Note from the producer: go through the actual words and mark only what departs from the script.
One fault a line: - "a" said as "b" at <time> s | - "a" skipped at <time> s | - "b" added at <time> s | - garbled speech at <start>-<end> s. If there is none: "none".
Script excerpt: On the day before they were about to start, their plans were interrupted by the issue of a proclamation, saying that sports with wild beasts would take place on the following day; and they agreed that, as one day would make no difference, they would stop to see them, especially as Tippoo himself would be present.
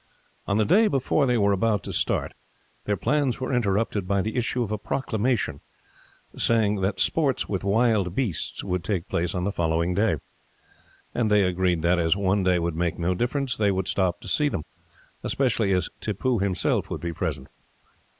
none